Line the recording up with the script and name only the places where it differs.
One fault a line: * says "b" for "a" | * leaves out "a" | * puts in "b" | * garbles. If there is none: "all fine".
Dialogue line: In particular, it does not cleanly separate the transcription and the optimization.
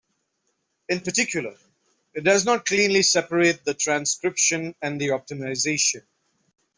all fine